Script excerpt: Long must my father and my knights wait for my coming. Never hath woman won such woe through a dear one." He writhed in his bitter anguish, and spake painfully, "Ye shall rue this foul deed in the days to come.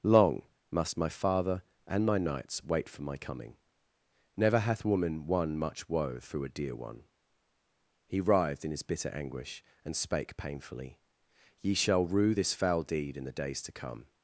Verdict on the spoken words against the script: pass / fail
fail